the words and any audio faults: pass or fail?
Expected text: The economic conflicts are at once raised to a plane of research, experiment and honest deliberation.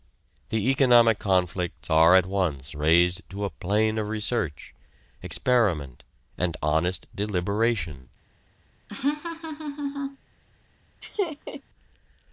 fail